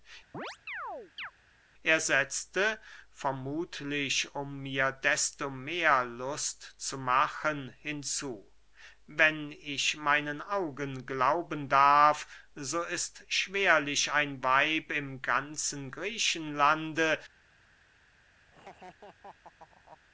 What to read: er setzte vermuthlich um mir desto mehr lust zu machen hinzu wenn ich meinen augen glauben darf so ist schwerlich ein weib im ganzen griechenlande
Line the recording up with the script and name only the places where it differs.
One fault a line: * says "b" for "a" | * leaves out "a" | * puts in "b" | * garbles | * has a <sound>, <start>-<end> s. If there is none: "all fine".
* has a chirp, 0.3-1.3 s
* has a laugh, 18.5-20.0 s